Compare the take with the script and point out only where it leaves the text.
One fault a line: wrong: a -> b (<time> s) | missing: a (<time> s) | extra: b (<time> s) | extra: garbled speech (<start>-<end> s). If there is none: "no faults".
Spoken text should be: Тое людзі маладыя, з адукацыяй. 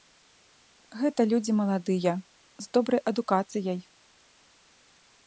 wrong: Тое -> Гэта (1.0 s)
extra: добрай (2.8 s)